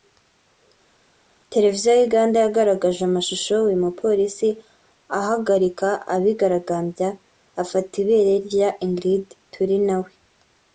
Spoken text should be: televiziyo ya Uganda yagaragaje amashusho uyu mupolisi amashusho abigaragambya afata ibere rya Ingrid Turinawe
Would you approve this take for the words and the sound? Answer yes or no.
no